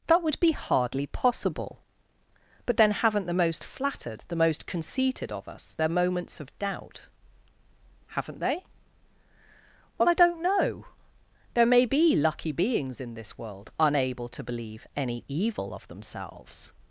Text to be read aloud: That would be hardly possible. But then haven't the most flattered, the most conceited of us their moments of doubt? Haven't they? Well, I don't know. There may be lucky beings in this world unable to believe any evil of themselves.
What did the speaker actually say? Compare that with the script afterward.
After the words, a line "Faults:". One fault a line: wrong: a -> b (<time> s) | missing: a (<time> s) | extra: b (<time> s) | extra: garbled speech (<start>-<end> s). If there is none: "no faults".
That would be hardly possible. But then haven't the most flattered, the most conceited of us their moments of doubt? Haven't they? Well, I don't know. There may be lucky beings in this world unable to believe any evil of themselves.
Faults:
no faults